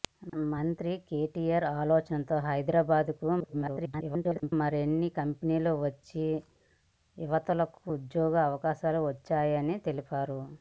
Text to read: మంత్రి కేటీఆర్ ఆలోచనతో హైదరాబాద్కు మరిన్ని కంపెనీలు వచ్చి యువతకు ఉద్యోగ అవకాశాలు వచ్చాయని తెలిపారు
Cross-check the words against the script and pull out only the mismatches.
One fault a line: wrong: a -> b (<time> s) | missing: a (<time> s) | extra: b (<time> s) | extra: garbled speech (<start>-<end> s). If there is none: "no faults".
extra: garbled speech (3.4-4.5 s)